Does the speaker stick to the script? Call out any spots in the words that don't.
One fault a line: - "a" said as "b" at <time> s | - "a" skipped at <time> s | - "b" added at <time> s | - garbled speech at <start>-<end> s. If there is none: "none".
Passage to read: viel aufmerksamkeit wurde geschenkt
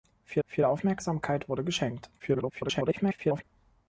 - "viel" added at 0.4 s
- garbled speech at 2.2-3.4 s